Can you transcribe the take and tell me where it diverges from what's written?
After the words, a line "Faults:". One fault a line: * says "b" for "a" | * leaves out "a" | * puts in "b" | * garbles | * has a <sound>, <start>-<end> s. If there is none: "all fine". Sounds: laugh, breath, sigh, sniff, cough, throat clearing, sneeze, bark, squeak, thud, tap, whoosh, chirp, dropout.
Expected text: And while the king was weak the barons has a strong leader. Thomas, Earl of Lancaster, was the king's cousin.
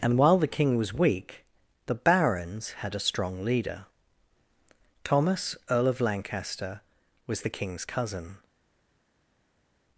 And while the king was weak the barons had a strong leader. Thomas, Earl of Lancaster, was the king's cousin.
Faults:
* says "had" for "has"